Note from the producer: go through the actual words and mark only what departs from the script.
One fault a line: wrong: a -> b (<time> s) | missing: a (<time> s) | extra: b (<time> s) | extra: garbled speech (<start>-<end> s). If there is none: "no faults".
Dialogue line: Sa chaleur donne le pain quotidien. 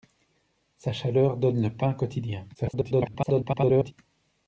extra: garbled speech (2.5-3.9 s)